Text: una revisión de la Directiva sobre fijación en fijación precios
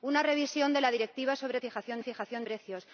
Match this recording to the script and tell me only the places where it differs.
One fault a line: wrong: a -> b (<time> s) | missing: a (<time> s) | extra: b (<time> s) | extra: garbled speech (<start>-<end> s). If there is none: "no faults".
no faults